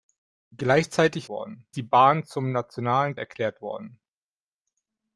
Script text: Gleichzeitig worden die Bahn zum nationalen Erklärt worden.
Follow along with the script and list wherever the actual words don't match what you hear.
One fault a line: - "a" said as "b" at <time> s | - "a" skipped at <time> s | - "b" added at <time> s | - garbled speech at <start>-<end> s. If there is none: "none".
none